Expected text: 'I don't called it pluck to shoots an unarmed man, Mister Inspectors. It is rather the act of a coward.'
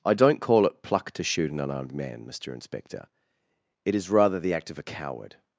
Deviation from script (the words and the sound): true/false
true